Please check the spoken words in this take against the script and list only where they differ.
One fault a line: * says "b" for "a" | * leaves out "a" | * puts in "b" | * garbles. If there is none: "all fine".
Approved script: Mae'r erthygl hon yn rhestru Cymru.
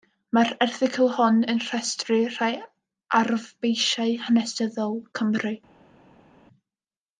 * puts in "rhai arfbeisiau hanesyddol"